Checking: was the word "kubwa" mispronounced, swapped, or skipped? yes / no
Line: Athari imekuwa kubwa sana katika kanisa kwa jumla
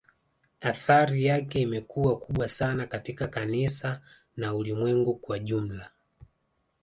no